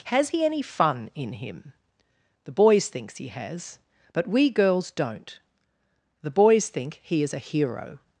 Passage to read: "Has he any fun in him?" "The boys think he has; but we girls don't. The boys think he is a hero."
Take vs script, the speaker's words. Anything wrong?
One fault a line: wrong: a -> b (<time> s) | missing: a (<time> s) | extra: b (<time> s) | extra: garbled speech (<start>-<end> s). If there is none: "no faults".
wrong: think -> thinks (2.9 s)